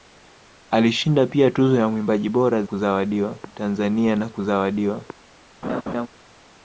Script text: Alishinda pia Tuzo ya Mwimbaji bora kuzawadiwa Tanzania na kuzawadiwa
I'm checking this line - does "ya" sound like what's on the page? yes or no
yes